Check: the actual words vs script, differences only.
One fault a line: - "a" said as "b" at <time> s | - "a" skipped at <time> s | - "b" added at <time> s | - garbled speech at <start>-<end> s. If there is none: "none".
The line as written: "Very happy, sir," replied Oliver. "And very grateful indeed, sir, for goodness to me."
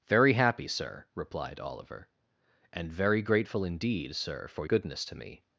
none